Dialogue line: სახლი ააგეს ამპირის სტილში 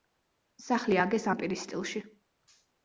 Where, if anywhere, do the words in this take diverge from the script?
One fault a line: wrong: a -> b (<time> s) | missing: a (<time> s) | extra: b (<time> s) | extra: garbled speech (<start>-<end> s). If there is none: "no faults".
no faults